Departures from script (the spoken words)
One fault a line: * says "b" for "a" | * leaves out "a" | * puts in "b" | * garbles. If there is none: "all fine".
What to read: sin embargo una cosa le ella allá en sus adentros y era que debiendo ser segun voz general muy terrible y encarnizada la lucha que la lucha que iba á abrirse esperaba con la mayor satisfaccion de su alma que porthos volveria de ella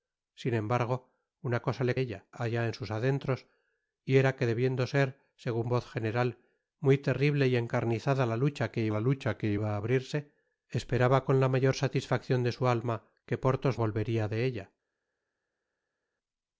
all fine